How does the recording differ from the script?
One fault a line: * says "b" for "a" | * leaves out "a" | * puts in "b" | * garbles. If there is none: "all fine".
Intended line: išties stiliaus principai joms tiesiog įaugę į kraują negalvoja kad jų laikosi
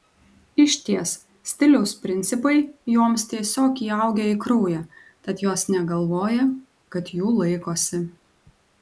* puts in "tad jos"